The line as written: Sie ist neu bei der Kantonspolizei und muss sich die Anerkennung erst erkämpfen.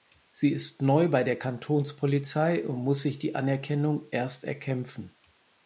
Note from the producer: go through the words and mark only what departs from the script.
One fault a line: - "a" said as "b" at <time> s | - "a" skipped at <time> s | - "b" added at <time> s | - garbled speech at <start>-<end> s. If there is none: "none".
none